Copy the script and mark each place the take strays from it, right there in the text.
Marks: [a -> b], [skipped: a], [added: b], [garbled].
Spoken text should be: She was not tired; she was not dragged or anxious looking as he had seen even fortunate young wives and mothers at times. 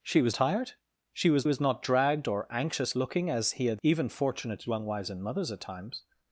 She was [skipped: not] tired; she was [added: was] not dragged or anxious looking as he had [skipped: seen] even fortunate young wives and mothers at times.